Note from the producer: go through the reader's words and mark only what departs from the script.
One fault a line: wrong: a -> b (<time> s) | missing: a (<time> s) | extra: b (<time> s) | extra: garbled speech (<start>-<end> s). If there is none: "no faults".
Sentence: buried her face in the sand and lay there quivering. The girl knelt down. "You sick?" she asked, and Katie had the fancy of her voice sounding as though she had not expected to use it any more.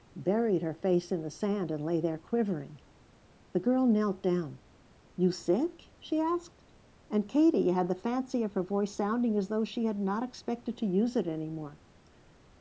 no faults